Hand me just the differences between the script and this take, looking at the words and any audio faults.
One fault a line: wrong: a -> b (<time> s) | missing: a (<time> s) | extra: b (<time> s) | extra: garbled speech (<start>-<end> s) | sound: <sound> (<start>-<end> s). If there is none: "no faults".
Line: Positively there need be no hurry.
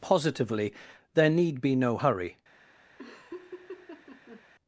sound: laugh (3.0-4.4 s)